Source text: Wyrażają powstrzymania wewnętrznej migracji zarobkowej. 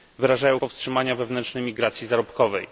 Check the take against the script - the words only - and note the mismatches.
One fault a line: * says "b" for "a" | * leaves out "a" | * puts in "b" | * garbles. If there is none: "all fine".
all fine